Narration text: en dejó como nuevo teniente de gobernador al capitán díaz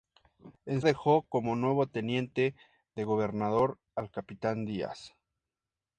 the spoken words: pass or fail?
pass